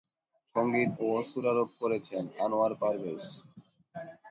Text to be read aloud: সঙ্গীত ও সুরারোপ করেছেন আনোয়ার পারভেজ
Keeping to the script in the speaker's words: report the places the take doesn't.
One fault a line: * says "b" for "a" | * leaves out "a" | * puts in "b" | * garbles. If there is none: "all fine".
all fine